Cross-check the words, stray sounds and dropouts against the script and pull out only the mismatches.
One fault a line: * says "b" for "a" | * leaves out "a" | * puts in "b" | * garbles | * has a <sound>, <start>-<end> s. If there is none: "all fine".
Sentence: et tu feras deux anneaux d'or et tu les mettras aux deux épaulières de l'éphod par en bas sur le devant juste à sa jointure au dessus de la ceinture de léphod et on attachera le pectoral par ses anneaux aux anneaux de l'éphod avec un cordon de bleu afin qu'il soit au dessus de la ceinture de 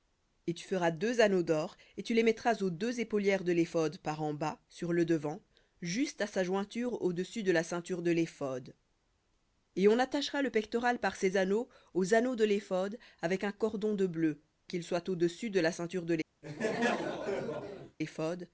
* leaves out "afin"
* has a laugh, 16.4-18.0 s